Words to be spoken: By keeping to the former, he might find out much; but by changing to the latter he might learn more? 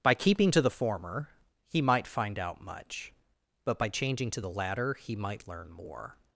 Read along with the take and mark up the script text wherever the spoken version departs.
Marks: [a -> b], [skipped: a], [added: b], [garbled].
By keeping to the former, he might find out much; but by changing to the latter he might learn more?